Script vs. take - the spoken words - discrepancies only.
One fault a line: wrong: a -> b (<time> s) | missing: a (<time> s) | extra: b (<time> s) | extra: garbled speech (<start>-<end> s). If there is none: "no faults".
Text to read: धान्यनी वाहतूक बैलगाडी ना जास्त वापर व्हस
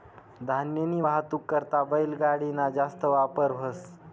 extra: करता (1.5 s)